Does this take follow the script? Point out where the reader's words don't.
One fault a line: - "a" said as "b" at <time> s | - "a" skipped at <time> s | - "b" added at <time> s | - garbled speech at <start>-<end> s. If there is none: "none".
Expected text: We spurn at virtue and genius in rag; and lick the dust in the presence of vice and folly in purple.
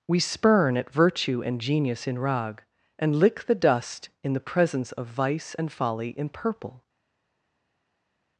none